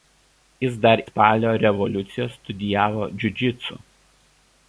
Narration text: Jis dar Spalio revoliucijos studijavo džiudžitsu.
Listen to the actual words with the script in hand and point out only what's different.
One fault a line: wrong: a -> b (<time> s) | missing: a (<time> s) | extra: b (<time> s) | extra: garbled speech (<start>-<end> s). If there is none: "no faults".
no faults